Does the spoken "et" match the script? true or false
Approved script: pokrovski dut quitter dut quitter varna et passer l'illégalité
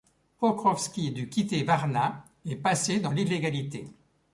true